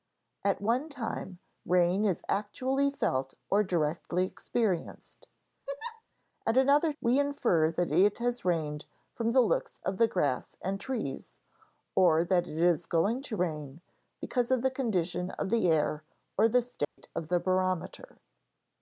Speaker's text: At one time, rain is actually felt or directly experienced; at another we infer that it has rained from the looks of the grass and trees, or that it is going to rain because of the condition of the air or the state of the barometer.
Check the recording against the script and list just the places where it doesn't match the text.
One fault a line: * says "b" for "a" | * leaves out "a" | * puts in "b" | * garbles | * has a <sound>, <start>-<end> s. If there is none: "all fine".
* has a laugh, 5.7-6.0 s
* has a dropout, 16.8-17.0 s